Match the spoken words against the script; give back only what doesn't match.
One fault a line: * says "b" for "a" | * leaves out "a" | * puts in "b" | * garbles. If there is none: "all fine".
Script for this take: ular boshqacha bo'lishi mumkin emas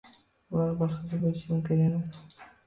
all fine